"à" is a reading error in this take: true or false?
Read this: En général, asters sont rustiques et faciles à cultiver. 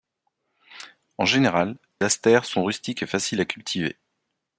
false